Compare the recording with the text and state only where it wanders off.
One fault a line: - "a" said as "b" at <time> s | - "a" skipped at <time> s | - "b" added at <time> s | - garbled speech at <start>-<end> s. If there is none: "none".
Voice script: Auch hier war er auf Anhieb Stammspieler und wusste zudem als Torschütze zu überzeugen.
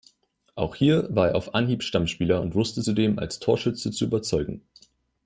none